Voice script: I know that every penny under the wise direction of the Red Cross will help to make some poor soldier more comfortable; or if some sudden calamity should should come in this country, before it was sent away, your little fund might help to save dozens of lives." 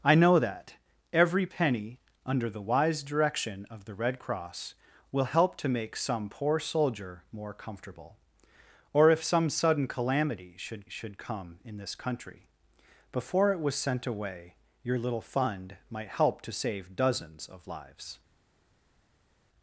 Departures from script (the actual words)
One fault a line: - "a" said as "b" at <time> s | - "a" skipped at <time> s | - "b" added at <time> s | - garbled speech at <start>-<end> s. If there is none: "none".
none